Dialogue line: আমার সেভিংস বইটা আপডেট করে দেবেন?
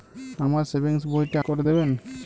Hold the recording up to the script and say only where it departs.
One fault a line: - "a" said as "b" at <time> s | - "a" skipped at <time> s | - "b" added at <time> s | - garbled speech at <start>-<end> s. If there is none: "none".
- "আপডেট" skipped at 1.4 s